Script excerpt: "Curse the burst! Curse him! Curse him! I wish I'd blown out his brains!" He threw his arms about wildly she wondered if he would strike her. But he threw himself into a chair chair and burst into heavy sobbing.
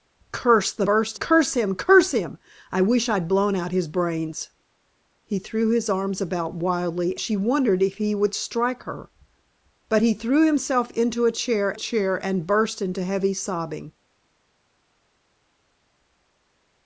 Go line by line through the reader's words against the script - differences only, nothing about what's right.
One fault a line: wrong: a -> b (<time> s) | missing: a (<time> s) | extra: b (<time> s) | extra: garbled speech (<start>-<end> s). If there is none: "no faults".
no faults